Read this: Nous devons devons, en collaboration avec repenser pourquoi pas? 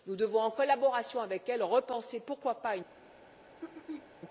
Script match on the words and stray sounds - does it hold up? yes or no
no